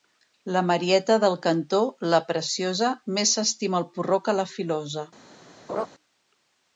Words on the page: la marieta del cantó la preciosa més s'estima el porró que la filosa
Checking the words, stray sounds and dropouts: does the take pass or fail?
fail